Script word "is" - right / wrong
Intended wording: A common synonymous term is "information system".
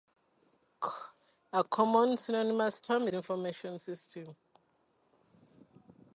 wrong